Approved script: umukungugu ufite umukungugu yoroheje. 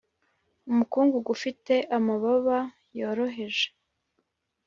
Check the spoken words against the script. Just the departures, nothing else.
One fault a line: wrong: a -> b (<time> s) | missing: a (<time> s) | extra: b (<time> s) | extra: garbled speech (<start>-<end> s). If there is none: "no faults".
wrong: umukungugu -> amababa (2.0 s)